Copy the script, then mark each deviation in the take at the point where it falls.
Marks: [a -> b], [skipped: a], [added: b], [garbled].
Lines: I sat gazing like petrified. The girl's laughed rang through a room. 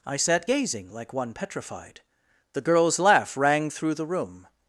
I sat gazing like [added: one] petrified. The girl's [laughed -> laugh] rang through [a -> the] room.